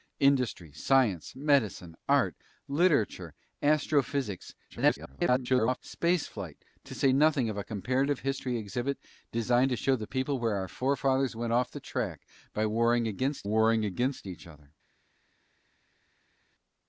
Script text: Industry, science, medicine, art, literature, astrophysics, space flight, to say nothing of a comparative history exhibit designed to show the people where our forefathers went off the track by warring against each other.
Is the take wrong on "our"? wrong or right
right